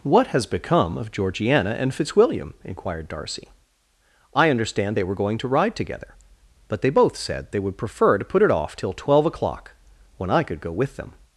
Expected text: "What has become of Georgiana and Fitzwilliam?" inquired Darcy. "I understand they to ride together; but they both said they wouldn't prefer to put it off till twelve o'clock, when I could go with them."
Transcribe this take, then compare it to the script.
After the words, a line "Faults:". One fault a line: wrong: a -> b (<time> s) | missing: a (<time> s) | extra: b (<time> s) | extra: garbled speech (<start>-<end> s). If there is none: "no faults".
"What has become of Georgiana and Fitzwilliam?" inquired Darcy. "I understand they were going to ride together; but they both said they would prefer to put it off till twelve o'clock, when I could go with them."
Faults:
extra: were going (5.0 s)
wrong: wouldn't -> would (7.6 s)